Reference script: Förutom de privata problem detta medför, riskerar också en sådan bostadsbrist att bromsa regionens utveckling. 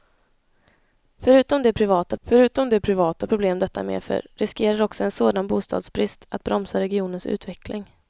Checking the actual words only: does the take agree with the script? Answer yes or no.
no